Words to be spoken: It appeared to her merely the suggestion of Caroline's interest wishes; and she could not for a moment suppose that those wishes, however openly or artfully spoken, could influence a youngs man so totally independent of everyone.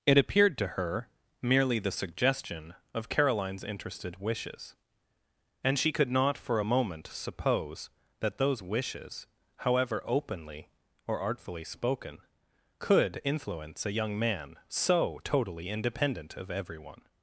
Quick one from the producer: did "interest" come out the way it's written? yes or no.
no